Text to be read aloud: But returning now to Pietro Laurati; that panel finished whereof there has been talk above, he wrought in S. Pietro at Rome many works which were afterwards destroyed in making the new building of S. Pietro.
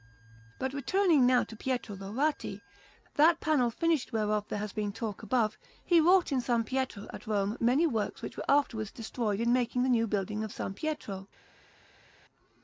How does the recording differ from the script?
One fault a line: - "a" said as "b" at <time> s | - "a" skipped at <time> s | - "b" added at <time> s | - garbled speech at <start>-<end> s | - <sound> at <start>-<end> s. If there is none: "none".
none